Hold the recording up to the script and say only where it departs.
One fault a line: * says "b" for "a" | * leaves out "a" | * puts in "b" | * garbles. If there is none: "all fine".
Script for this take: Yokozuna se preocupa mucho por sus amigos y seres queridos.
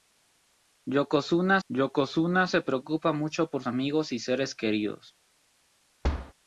* puts in "yokozuna"
* leaves out "sus"